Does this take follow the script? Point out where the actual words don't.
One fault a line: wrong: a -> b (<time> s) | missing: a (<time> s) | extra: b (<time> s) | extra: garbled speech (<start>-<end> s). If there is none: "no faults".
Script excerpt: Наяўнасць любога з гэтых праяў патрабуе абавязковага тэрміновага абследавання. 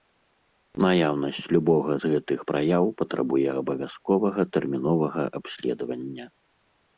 no faults